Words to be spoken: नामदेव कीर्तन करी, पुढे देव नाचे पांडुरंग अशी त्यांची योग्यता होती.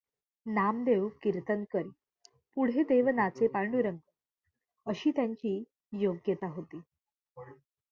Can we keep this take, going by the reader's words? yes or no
yes